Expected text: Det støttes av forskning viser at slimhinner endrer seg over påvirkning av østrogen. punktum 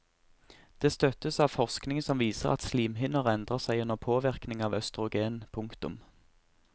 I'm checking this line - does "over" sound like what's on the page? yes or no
no